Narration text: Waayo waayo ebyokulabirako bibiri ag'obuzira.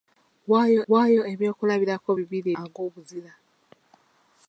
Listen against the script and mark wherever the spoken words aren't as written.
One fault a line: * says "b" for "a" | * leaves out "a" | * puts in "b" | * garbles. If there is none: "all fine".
all fine